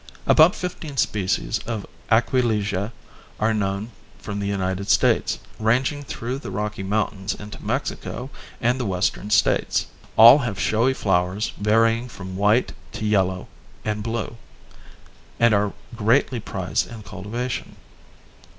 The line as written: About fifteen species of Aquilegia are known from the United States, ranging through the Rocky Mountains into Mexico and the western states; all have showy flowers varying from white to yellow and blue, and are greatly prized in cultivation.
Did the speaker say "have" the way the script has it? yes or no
yes